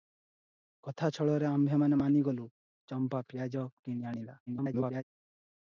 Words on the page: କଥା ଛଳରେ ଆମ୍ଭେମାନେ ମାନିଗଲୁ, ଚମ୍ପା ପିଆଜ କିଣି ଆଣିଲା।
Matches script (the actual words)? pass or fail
fail